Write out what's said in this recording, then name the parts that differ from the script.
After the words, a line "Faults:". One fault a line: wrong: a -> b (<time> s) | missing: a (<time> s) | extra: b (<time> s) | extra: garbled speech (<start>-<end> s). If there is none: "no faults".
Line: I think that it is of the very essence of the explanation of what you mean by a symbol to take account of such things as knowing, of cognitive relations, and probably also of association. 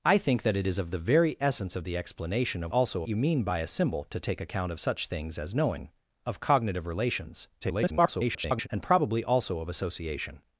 I think that it is of the very essence of the explanation of also you mean by a symbol to take account of such things as knowing, of cognitive relations, [garbled] and probably also of association.
Faults:
wrong: what -> also (2.7 s)
extra: garbled speech (7.6-8.7 s)